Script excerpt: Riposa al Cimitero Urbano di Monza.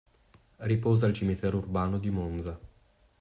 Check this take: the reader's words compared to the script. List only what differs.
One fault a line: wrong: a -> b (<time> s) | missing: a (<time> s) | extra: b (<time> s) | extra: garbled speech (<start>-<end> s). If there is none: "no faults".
no faults